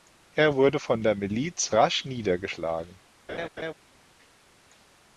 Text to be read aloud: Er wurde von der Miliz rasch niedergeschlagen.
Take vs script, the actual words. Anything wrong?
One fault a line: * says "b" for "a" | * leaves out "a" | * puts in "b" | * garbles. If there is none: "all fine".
all fine